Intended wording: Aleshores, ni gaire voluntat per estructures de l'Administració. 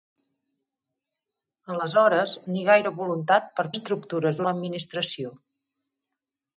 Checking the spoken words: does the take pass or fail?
pass